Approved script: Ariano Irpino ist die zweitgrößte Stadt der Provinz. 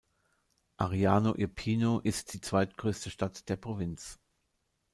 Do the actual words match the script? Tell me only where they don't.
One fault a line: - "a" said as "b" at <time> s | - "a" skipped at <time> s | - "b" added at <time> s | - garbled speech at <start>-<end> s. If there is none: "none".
none